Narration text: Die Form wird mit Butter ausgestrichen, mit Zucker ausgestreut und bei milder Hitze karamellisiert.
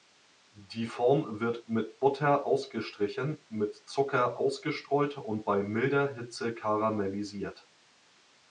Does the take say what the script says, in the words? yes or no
yes